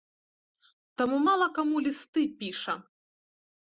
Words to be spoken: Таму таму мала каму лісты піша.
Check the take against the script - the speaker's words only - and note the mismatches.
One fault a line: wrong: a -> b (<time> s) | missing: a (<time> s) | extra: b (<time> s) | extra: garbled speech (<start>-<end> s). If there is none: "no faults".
missing: таму (1.2 s)